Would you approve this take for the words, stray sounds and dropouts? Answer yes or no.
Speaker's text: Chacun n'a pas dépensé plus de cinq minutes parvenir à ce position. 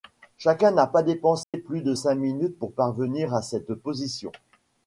no